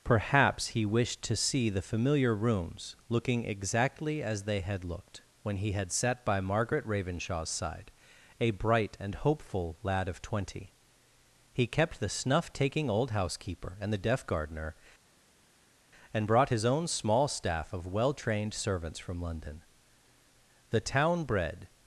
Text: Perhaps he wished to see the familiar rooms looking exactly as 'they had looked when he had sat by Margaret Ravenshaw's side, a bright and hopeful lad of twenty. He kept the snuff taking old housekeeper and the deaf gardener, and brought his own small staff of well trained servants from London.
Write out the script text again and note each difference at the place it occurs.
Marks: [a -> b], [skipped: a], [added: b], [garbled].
Perhaps he wished to see the familiar rooms looking exactly as 'they had looked when he had sat by Margaret Ravenshaw's side, a bright and hopeful lad of twenty. He kept the snuff taking old housekeeper and the deaf gardener, and brought his own small staff of well trained servants from London. [added: The town bred]